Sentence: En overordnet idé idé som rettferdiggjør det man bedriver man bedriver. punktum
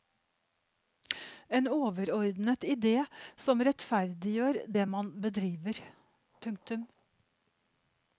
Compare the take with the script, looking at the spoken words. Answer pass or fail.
fail